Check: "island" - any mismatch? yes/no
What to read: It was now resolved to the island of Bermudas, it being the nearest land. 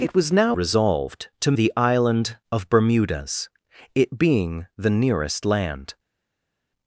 no